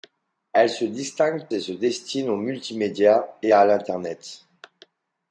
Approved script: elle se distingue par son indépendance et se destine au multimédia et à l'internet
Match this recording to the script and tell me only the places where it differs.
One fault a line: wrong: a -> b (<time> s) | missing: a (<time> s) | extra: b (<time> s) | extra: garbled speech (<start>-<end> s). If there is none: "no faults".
missing: par son indépendance (1.4 s)